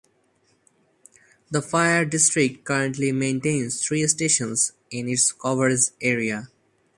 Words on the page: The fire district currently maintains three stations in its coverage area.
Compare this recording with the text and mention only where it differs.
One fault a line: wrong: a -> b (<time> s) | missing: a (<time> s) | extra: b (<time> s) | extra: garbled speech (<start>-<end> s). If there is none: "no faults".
no faults